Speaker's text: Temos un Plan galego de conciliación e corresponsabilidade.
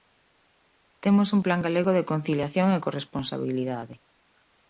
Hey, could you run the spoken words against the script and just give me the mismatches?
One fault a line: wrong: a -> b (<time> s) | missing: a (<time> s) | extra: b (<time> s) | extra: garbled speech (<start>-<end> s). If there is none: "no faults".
no faults